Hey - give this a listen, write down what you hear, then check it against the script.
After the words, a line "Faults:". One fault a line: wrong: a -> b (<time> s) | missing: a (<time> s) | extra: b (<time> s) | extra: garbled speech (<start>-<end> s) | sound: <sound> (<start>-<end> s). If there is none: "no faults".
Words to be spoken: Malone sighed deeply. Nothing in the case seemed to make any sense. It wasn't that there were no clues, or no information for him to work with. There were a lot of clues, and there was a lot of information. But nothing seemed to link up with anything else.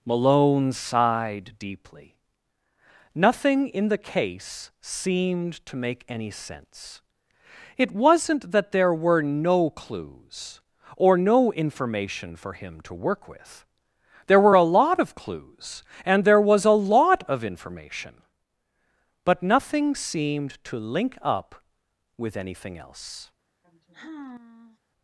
Malone sighed deeply. Nothing in the case seemed to make any sense. It wasn't that there were no clues, or no information for him to work with. There were a lot of clues, and there was a lot of information. But nothing seemed to link up with anything else.
Faults:
sound: sigh (23.6-24.8 s)